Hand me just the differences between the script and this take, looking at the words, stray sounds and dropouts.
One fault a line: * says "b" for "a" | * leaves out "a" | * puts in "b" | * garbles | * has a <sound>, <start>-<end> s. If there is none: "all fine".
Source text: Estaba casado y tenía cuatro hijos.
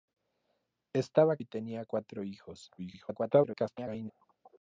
* leaves out "casado"
* garbles